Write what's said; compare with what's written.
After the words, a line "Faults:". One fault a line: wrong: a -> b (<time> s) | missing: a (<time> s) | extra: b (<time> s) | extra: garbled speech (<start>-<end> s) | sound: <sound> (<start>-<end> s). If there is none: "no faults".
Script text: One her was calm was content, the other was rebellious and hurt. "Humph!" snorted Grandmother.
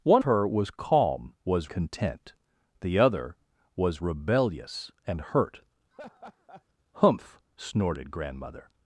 One her was calm was content, the other was rebellious and hurt. "Humph!" snorted Grandmother.
Faults:
sound: laugh (5.9-6.6 s)